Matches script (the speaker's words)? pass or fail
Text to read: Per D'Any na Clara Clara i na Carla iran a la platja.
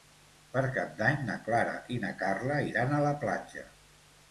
fail